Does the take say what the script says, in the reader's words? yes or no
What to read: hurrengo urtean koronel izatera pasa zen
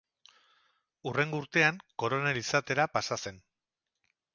yes